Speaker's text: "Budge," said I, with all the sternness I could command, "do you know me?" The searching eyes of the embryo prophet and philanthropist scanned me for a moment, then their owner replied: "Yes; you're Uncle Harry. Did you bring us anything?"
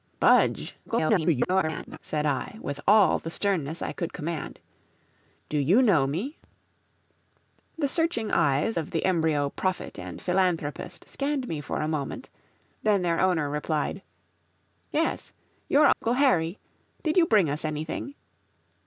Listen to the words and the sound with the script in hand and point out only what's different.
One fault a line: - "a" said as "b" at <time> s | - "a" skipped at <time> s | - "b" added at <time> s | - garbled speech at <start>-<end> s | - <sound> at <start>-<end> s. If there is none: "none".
- garbled speech at 0.9-2.0 s
- dropout at 15.9-16.0 s